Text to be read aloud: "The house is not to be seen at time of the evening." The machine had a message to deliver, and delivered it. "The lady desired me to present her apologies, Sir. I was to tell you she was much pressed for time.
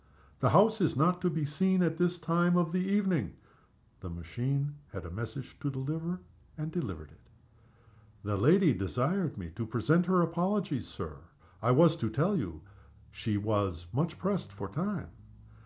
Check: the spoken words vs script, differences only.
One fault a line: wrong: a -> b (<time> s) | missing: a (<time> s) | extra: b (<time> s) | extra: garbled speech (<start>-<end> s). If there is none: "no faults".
extra: this (2.0 s)